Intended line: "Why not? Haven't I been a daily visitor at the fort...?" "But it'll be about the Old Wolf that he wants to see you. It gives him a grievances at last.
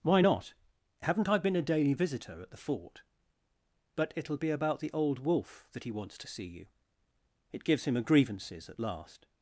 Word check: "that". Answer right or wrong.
right